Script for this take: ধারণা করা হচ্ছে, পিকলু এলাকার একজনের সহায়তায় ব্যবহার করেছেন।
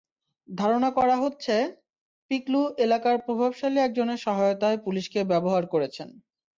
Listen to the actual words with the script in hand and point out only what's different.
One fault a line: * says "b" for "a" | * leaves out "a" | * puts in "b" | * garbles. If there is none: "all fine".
* puts in "প্রভাবশালী"
* puts in "পুলিশকে"